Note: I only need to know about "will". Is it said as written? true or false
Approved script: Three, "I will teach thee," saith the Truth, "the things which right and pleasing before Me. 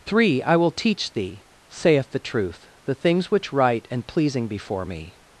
true